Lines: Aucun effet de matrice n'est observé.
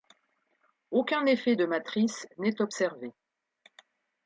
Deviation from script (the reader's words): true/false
false